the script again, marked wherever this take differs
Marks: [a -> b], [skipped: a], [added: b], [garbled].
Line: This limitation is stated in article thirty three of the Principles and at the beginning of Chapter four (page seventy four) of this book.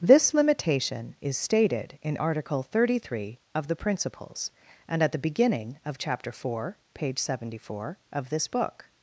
This limitation is stated in article thirty three of the Principles and at the beginning of Chapter four (page seventy four) of this book.